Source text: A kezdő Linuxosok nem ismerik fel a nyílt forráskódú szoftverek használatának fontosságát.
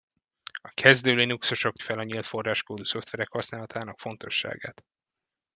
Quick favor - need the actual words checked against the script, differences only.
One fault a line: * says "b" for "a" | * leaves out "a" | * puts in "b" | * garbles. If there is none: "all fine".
* leaves out "nem ismerik"